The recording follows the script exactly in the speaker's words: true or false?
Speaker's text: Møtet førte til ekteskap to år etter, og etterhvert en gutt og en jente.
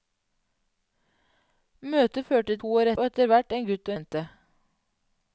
false